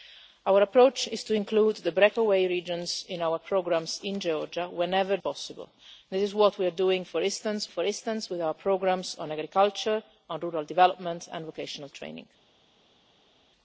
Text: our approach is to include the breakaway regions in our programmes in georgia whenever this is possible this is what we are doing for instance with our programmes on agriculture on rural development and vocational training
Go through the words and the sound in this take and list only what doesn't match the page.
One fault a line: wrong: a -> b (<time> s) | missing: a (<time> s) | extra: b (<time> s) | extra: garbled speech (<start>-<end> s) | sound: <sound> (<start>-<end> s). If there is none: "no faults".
missing: this is (5.2 s)
extra: for instance (7.7 s)